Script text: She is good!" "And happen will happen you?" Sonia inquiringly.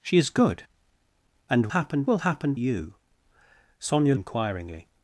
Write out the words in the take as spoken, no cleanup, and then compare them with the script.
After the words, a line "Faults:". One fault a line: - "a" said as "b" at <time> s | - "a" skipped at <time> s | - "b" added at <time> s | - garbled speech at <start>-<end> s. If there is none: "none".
She is good!" "And happen will happen you?" Sonia inquiringly.
Faults:
none